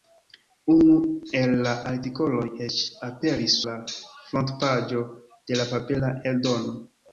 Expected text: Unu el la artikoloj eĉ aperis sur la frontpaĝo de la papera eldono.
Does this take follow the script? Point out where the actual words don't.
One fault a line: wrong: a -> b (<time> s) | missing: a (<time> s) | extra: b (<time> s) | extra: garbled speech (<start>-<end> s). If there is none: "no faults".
missing: sur (3.6 s)